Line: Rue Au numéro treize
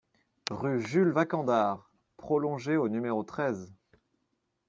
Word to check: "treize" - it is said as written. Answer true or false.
true